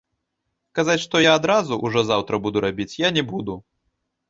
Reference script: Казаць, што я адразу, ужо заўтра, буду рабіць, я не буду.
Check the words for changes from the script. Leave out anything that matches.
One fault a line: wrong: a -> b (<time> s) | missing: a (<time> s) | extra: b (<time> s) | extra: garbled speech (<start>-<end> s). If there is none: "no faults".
no faults